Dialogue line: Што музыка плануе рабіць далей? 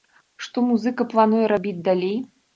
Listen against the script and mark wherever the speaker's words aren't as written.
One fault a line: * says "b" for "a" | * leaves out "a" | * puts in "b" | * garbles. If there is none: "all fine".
all fine